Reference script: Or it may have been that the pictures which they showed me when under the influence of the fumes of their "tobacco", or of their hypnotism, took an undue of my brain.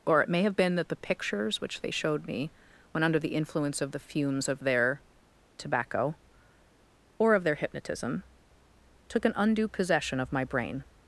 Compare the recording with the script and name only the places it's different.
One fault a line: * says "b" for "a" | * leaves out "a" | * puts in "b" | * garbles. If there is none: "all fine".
* puts in "possession"